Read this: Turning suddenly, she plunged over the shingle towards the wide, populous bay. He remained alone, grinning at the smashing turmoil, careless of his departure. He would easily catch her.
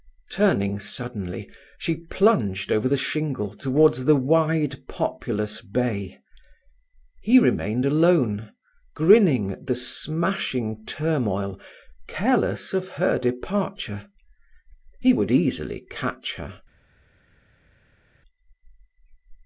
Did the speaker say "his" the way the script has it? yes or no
no